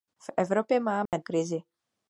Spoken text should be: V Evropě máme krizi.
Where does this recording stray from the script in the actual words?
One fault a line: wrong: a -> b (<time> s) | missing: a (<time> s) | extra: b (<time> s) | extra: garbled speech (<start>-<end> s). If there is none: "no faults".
no faults